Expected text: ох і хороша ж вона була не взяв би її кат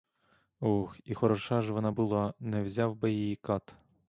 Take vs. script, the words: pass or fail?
pass